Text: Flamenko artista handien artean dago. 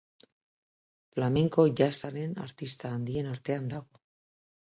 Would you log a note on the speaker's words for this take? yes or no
yes